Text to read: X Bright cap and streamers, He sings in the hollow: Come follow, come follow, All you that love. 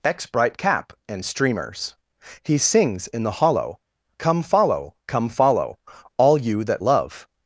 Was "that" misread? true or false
false